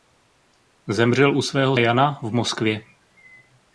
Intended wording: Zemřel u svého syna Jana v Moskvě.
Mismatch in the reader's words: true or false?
true